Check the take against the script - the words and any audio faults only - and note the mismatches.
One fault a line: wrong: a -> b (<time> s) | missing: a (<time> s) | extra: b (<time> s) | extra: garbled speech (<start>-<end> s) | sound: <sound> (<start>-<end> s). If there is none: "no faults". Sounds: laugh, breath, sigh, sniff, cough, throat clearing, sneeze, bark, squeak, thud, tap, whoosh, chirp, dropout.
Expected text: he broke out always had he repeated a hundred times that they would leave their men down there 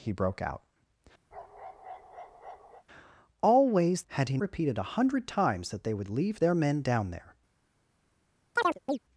sound: bark (1.3-2.8 s)
sound: chirp (8.6-9.0 s)